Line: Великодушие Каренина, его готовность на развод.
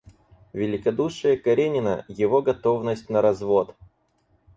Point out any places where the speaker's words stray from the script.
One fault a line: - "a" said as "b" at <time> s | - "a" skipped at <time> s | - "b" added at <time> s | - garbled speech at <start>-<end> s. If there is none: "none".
none